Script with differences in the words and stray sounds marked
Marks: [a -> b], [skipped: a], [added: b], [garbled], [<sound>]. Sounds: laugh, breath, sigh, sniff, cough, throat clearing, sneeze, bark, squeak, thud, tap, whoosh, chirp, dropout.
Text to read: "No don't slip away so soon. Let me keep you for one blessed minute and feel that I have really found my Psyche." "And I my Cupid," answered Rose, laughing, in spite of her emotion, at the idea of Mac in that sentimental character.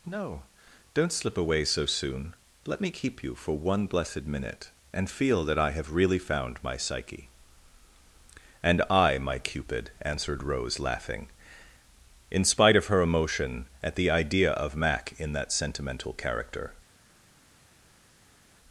"No don't slip away so soon. Let me keep you for one blessed minute and feel that I have really found my Psyche." "And I my Cupid," answered Rose, laughing, in spite of her emotion, at the idea of Mac in that sentimental character.